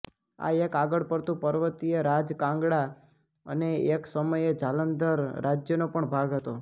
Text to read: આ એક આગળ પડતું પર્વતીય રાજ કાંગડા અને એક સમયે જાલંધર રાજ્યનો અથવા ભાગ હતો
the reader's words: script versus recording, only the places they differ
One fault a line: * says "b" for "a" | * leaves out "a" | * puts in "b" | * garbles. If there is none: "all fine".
* says "પણ" for "અથવા"